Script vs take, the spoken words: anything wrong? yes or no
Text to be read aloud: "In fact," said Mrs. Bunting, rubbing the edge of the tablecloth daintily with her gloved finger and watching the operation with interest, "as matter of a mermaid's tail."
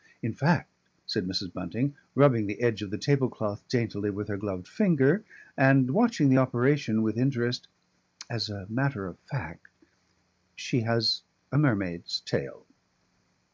yes